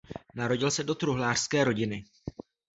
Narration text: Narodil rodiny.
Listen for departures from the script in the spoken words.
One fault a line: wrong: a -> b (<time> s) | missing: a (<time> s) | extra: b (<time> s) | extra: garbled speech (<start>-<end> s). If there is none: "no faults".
extra: se do truhlářské (0.7 s)